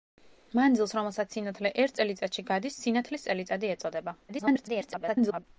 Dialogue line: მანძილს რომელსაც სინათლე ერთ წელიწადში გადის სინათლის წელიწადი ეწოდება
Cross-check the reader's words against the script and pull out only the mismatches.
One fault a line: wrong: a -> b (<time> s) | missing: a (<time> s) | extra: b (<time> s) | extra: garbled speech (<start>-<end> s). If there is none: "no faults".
extra: garbled speech (4.3-5.4 s)